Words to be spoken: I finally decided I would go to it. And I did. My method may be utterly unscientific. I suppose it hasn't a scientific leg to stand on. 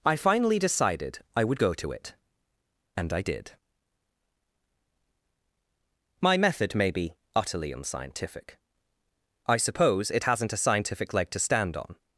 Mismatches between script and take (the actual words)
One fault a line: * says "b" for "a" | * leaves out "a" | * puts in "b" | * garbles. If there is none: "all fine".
all fine